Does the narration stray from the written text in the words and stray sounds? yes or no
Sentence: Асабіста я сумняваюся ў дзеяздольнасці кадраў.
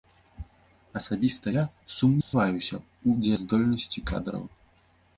yes